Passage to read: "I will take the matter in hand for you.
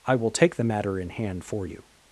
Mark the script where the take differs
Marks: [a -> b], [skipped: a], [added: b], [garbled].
"I will take the matter in hand for you.